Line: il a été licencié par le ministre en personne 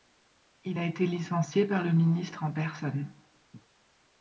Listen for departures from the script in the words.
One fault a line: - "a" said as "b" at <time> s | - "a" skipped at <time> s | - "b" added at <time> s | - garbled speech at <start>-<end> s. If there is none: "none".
none